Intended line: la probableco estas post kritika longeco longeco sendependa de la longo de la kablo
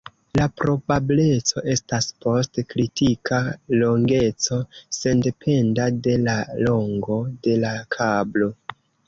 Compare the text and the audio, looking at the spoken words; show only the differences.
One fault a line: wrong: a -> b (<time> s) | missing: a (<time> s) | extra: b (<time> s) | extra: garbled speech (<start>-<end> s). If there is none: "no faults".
missing: longeco (4.6 s)